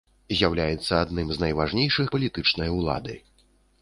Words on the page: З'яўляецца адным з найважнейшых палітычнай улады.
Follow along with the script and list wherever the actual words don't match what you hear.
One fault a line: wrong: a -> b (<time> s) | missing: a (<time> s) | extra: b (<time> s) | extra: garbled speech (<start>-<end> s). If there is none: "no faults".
no faults